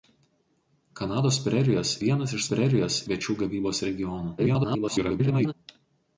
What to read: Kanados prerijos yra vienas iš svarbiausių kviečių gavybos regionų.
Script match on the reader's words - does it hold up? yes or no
no